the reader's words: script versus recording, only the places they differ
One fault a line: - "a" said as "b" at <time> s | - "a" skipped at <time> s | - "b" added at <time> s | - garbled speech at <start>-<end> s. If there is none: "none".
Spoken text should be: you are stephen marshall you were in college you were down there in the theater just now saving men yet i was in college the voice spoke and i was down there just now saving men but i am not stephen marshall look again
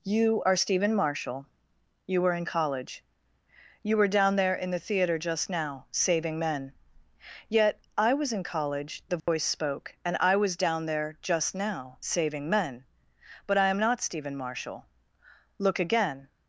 none